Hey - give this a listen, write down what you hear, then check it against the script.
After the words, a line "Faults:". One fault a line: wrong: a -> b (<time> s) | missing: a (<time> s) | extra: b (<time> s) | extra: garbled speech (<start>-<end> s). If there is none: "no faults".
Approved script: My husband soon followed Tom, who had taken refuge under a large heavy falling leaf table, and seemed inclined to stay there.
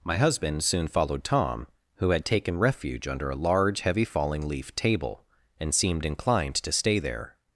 My husband soon followed Tom, who had taken refuge under a large heavy falling leaf table, and seemed inclined to stay there.
Faults:
no faults